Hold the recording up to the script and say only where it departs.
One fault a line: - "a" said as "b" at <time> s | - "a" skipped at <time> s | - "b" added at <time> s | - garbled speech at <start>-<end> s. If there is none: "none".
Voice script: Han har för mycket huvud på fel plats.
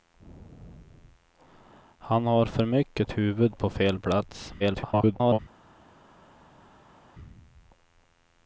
- garbled speech at 4.6-5.4 s